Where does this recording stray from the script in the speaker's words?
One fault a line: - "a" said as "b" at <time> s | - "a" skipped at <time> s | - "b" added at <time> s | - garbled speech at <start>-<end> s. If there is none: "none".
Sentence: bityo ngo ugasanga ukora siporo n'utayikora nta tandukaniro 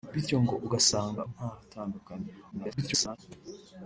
- "ukora siporo n'utayikora" skipped at 1.2 s
- garbled speech at 2.5-3.2 s